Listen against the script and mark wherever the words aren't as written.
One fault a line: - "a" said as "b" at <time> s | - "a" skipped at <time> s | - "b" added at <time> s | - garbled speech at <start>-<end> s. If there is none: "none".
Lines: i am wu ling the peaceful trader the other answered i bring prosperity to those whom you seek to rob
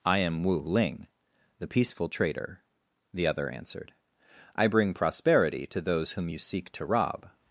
none